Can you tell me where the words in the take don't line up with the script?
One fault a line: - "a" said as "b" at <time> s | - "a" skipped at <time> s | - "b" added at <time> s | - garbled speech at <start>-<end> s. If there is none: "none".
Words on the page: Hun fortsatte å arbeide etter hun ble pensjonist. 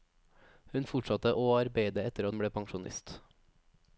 none